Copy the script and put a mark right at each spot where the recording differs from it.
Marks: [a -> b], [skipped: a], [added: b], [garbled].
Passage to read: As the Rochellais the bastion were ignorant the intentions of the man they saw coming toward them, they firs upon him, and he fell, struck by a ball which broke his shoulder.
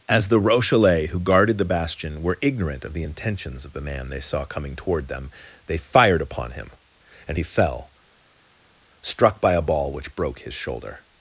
As the Rochellais [added: who guarded] the bastion were ignorant [added: of] the intentions of the man they saw coming toward them, they [firs -> fired] upon him, and he fell, struck by a ball which broke his shoulder.